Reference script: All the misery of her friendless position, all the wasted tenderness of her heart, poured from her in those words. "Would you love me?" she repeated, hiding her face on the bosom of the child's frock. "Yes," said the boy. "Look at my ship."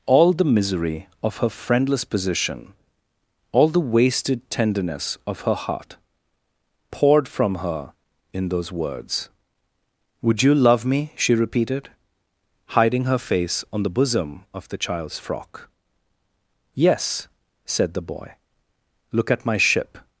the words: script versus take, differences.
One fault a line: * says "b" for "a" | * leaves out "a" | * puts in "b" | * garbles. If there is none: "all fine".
all fine